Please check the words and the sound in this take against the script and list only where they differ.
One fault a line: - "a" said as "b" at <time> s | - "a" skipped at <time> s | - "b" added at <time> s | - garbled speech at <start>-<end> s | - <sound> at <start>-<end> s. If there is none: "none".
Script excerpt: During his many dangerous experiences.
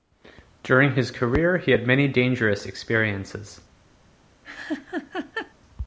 - "career he had" added at 1.1 s
- laugh at 4.4-5.5 s